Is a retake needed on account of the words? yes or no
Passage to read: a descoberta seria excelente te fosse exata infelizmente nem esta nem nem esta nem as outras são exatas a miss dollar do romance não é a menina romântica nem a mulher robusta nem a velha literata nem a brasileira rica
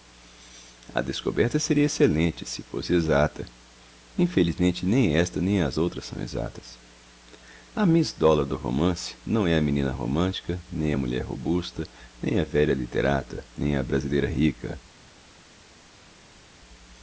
yes